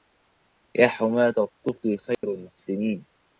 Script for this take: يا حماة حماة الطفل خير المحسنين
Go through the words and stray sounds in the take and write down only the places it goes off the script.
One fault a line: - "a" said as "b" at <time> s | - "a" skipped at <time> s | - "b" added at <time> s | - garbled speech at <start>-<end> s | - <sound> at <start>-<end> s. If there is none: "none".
- "حماة" skipped at 1.3 s
- dropout at 2.1-2.2 s